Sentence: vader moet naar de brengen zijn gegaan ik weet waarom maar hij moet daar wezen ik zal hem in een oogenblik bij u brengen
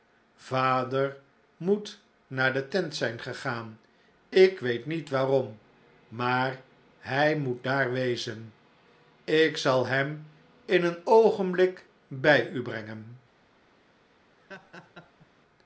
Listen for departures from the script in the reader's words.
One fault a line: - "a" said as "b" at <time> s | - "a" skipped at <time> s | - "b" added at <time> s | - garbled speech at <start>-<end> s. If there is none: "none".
- "brengen" said as "tent" at 2.7 s
- "niet" added at 4.8 s